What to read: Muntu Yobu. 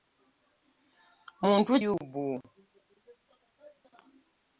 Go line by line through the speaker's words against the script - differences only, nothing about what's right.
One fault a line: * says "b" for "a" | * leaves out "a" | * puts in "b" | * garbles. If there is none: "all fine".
all fine